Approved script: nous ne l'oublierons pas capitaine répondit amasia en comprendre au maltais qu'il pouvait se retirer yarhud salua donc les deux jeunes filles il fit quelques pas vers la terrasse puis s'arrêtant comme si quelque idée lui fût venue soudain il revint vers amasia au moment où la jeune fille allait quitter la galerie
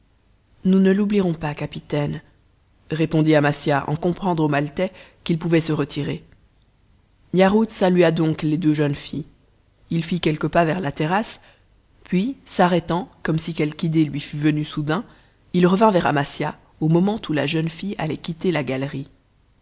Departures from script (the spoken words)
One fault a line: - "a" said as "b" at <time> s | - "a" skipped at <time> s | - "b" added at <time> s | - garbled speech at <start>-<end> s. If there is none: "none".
none